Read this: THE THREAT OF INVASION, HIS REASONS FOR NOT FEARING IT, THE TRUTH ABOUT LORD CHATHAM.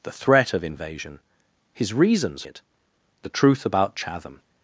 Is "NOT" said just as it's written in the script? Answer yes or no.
no